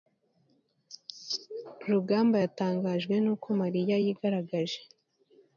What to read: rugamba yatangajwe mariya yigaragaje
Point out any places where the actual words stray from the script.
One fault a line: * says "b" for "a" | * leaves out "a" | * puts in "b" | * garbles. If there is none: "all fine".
* puts in "nuko"